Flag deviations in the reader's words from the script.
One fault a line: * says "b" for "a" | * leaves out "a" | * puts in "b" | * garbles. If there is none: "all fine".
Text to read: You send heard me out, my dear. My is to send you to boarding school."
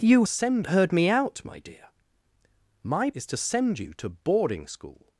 all fine